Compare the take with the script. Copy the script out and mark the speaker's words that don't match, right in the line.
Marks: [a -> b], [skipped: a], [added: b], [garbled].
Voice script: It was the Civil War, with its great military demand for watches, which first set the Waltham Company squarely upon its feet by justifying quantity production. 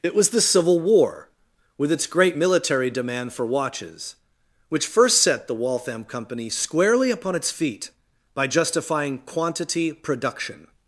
It was the Civil War, with its great military demand for watches, which first set the Waltham Company squarely upon its feet by justifying quantity production.